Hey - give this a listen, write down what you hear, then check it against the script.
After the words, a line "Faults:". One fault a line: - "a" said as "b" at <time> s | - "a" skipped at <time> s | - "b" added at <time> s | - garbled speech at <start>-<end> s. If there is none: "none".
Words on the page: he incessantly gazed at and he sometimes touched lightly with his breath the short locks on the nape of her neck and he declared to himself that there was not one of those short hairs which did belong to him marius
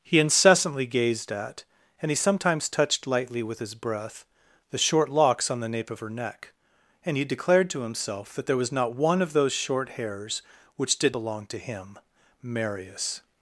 he incessantly gazed at and he sometimes touched lightly with his breath the short locks on the nape of her neck and he declared to himself that there was not one of those short hairs which did belong to him marius
Faults:
none